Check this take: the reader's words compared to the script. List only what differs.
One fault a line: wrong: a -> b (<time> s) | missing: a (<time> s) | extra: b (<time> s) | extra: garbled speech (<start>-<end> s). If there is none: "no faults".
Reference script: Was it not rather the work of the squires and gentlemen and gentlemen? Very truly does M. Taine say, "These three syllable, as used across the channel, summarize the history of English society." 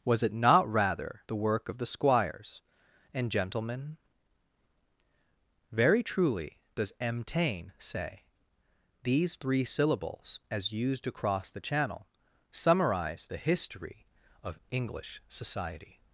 missing: and gentlemen (4.0 s)
wrong: syllable -> syllables (9.6 s)